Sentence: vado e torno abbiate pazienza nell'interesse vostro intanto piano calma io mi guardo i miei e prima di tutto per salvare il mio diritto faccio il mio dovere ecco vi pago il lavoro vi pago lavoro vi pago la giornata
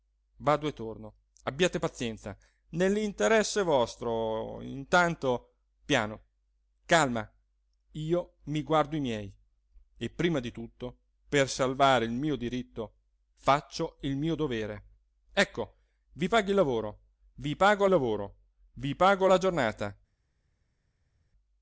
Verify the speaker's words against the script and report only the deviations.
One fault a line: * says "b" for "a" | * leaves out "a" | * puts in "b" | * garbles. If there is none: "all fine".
all fine